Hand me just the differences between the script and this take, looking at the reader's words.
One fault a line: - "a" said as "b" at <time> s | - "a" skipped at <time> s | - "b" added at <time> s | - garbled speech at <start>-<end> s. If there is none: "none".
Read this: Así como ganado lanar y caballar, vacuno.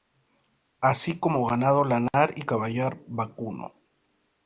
none